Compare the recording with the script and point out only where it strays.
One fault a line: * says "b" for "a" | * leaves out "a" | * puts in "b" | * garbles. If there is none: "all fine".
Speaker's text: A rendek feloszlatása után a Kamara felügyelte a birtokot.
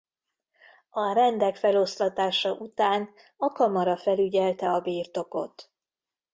all fine